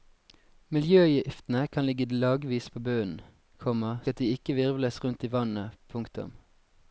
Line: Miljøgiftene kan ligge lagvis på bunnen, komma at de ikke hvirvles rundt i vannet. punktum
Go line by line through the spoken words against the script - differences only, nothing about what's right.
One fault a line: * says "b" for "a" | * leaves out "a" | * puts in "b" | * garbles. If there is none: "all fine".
all fine